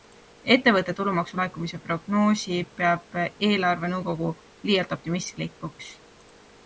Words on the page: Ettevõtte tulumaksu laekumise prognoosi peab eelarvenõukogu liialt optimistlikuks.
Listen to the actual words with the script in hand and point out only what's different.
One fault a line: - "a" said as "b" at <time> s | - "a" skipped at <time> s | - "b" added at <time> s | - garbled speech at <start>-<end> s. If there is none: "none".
none